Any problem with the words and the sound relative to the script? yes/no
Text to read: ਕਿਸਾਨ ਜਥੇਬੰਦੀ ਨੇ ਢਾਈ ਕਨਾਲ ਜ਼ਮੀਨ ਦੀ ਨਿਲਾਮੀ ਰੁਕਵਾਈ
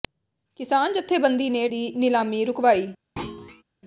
yes